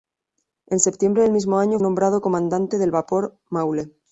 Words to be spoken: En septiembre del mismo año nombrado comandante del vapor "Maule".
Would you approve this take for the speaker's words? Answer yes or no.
yes